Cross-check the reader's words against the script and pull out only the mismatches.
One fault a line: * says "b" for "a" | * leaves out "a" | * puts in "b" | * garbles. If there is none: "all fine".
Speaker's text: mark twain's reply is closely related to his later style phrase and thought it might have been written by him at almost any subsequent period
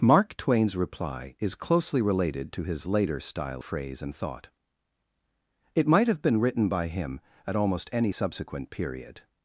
all fine